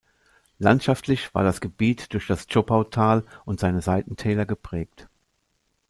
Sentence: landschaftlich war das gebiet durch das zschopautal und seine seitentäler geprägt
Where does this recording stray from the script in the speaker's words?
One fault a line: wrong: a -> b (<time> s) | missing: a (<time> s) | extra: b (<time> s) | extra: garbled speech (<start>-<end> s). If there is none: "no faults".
no faults